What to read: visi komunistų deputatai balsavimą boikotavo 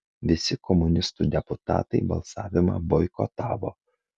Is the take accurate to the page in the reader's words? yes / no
yes